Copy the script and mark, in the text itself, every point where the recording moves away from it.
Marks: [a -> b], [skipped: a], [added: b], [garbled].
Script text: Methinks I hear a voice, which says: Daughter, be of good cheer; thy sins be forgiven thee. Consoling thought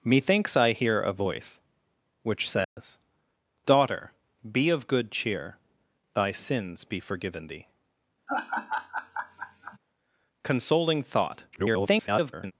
Methinks I hear a voice, which says: Daughter, be of good cheer; thy sins be forgiven thee. Consoling thought [garbled]